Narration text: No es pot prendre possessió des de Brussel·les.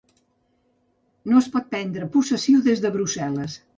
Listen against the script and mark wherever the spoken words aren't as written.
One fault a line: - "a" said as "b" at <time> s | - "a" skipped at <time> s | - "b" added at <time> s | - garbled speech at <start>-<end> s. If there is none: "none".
none